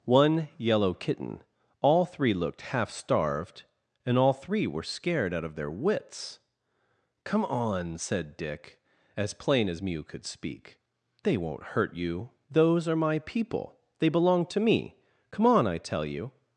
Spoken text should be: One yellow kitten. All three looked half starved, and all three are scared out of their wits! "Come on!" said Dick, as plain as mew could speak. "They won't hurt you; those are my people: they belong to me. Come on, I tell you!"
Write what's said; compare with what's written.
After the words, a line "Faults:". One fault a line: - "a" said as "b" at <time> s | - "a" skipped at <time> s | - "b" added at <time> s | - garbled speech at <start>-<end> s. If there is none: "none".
One yellow kitten. All three looked half starved, and all three were scared out of their wits! "Come on!" said Dick, as plain as mew could speak. "They won't hurt you; those are my people: they belong to me. Come on, I tell you!"
Faults:
- "are" said as "were" at 4.7 s